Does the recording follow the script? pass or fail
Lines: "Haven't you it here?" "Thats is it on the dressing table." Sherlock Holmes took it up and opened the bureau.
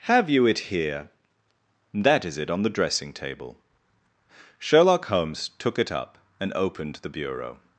fail